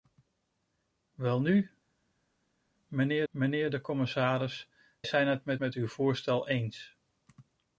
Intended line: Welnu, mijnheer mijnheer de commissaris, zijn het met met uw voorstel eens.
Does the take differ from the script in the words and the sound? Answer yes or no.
no